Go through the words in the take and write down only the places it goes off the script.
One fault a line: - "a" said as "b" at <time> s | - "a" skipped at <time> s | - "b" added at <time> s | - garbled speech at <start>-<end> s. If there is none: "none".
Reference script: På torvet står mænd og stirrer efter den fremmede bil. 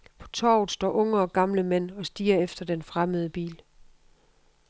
- "unge og gamle" added at 0.9 s